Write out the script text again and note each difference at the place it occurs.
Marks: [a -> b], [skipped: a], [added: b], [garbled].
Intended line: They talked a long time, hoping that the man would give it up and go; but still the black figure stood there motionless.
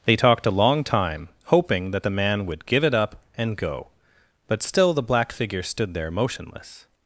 They talked a long time, hoping that the man would give it up and go; but still the black figure stood there motionless.